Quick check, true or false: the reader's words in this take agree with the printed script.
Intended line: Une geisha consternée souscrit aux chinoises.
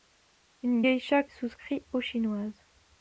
false